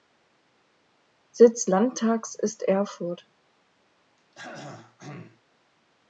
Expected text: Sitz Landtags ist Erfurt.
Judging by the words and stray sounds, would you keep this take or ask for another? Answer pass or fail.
fail